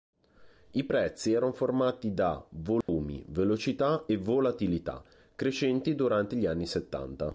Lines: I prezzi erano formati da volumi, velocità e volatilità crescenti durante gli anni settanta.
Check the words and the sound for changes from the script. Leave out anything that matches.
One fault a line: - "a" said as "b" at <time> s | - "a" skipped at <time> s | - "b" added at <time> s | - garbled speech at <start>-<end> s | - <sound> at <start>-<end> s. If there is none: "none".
- dropout at 2.8-2.9 s